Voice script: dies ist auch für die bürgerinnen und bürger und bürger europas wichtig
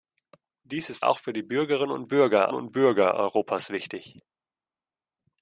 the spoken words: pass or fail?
pass